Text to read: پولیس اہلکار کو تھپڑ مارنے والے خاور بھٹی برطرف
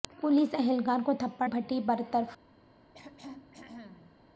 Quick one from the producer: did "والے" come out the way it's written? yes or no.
no